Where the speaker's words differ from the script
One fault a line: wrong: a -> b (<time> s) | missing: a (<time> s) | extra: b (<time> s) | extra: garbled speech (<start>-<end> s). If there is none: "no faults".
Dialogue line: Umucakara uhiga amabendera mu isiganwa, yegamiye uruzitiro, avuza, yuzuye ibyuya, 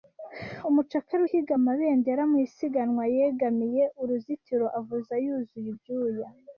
no faults